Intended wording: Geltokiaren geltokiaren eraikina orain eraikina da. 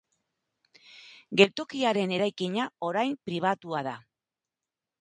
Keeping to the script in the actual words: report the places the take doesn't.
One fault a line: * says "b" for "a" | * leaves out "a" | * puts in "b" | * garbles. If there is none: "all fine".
* leaves out "geltokiaren"
* says "pribatua" for "eraikina"